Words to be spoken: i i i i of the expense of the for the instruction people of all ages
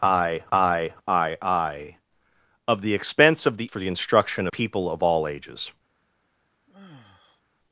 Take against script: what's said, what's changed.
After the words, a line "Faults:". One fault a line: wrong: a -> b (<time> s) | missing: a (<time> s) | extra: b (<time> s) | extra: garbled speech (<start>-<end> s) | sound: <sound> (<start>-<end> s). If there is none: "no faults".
i i i i of the expense of the for the instruction people of all ages
Faults:
sound: sigh (6.7-7.4 s)